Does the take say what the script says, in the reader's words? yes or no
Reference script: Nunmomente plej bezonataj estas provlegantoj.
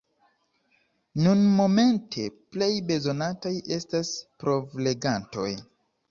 yes